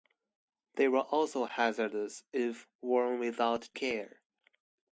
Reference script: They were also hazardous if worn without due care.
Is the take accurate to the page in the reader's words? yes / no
no